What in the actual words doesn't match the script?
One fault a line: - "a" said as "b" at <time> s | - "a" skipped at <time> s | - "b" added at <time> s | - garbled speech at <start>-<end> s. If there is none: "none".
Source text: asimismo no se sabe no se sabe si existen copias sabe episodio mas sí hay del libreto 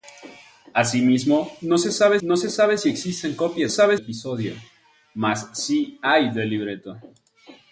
none